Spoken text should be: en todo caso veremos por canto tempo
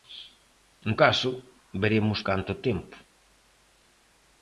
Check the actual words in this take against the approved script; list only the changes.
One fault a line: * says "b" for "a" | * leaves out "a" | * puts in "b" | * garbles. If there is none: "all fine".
* leaves out "todo"
* leaves out "por"